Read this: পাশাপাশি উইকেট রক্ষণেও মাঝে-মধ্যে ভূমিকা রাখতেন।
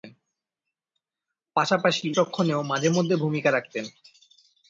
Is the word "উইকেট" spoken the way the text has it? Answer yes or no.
no